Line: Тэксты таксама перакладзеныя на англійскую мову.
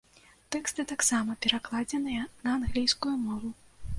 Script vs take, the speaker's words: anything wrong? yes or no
no